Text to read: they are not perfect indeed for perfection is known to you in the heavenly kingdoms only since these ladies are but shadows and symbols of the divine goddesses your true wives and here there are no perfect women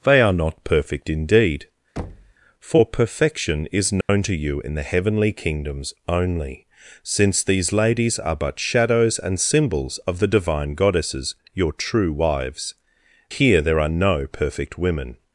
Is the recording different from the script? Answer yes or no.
yes